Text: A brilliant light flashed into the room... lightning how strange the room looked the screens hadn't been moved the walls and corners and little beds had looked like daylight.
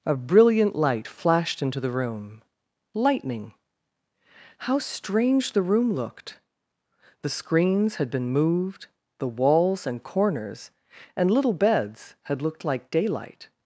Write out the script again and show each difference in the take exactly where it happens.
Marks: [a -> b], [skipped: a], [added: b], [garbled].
A brilliant light flashed into the room... lightning how strange the room looked the screens [hadn't -> had] been moved the walls and corners and little beds had looked like daylight.